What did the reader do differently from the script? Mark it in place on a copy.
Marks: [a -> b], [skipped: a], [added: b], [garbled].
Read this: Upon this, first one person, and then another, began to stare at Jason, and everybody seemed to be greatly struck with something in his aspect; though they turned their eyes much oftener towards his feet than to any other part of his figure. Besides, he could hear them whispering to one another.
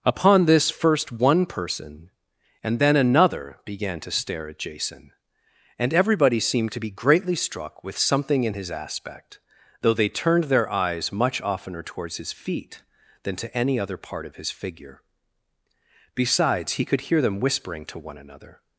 Upon this, first one person, and then another, began to stare at Jason, and everybody seemed to be greatly struck with something in his aspect; though they turned their eyes much oftener towards his feet than to any other part of his figure. Besides, he could hear them whispering to one another.